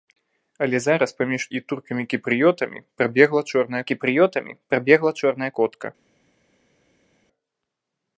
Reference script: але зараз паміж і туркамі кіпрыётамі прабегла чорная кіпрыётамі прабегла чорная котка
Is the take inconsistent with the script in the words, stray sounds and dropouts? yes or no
no